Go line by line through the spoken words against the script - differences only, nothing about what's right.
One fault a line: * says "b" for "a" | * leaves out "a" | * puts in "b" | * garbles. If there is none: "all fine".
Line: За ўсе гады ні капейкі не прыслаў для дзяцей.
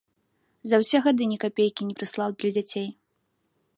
all fine